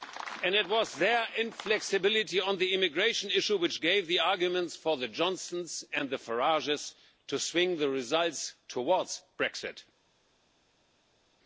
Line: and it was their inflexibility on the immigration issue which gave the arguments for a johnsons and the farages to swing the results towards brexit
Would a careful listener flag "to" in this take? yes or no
no